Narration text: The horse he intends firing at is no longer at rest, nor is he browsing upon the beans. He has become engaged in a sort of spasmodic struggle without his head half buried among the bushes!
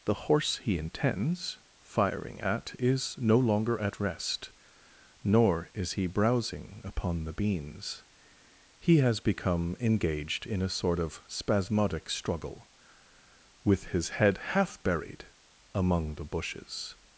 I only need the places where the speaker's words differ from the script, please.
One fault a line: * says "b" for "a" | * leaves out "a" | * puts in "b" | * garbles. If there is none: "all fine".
* says "with" for "without"